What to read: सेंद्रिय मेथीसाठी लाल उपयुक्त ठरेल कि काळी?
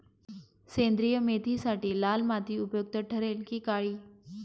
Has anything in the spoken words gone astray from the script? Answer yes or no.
yes